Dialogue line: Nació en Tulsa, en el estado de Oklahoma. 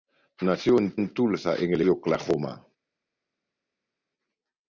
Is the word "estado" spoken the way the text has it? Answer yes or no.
no